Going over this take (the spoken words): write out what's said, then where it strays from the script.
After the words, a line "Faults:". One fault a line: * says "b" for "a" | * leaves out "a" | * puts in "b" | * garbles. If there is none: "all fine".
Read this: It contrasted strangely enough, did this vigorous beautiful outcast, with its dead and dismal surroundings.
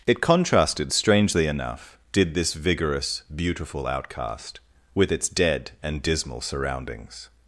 It contrasted strangely enough, did this vigorous beautiful outcast, with its dead and dismal surroundings.
Faults:
all fine